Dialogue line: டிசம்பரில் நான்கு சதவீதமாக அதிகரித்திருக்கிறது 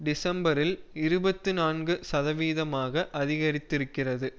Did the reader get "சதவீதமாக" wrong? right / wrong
right